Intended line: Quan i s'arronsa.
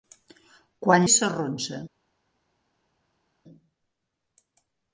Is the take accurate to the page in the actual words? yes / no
yes